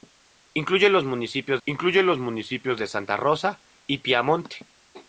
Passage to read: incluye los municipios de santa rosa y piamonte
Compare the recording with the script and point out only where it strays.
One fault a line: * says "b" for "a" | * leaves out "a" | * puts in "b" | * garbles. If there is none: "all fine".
* puts in "incluye los municipios"